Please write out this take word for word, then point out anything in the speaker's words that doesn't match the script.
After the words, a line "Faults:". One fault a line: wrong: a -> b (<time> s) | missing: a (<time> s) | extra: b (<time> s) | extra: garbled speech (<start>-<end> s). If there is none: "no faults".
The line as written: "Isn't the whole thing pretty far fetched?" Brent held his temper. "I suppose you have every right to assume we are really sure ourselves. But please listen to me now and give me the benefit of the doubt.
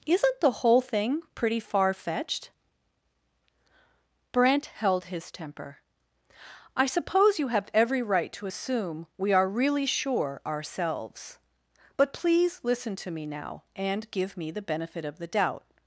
"Isn't the whole thing pretty far fetched?" Brent held his temper. "I suppose you have every right to assume we are really sure ourselves. But please listen to me now and give me the benefit of the doubt.
Faults:
no faults